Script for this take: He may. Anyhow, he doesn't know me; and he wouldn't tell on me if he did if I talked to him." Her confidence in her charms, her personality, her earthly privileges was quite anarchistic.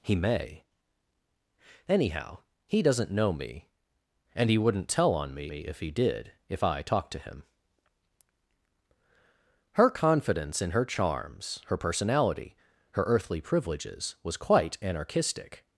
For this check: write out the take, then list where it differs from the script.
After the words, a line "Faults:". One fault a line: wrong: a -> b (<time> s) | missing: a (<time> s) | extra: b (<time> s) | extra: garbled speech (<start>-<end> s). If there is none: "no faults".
He may. Anyhow, he doesn't know me; and he wouldn't tell on me me if he did if I talked to him." Her confidence in her charms, her personality, her earthly privileges was quite anarchistic.
Faults:
extra: me (5.5 s)